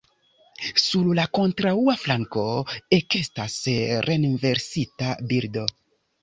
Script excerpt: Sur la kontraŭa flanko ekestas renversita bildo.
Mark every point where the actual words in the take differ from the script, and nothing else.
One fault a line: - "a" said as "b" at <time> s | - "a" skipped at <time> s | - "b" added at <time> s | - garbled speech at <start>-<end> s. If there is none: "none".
none